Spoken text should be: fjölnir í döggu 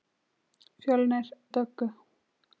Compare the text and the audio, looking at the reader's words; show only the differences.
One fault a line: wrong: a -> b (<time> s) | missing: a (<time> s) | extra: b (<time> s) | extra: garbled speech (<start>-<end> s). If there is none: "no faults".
no faults